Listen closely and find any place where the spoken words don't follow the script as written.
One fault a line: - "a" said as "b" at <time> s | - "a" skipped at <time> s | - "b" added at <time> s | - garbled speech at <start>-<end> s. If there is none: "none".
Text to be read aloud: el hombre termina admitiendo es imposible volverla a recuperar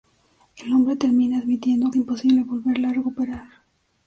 none